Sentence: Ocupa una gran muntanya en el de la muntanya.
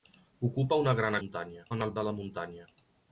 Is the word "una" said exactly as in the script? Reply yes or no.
yes